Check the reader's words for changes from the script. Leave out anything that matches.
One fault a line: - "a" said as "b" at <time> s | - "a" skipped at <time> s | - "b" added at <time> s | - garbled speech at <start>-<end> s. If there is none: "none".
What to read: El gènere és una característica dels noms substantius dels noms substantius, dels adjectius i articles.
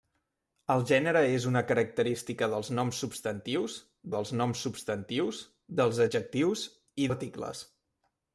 none